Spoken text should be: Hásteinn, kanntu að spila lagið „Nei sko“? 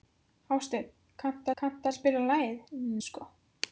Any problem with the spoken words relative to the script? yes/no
yes